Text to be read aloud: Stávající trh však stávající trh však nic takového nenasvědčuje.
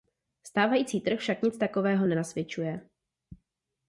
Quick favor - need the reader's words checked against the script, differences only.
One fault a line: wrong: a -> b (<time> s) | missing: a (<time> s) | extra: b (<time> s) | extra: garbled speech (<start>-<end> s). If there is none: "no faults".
missing: stávající trh však (1.4 s)